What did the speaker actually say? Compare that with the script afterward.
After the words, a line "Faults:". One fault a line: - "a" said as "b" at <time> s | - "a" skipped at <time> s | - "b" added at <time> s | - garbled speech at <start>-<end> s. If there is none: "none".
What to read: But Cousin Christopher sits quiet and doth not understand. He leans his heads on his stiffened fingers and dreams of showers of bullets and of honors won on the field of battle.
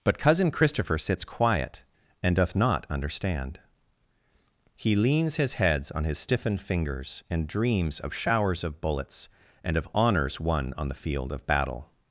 But Cousin Christopher sits quiet and doth not understand. He leans his heads on his stiffened fingers and dreams of showers of bullets and of honors won on the field of battle.
Faults:
none